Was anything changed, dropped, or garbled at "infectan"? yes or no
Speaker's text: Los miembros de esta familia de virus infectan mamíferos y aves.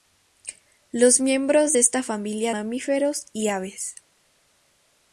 yes